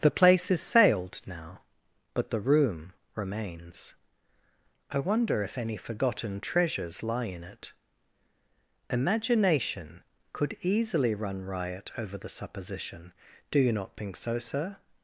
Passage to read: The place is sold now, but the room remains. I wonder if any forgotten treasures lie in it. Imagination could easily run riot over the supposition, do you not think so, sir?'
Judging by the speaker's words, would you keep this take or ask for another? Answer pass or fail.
fail